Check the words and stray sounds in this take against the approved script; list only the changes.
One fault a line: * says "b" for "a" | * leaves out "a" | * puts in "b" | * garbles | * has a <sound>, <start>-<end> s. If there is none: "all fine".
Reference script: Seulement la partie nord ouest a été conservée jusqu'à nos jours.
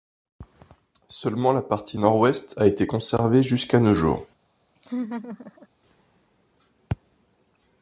* has a laugh, 4.7-5.7 s